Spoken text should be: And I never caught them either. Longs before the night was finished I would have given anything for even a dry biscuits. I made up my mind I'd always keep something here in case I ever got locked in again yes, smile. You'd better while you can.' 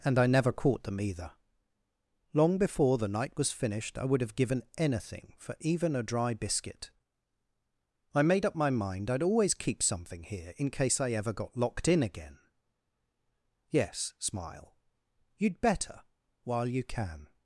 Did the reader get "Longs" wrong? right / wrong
wrong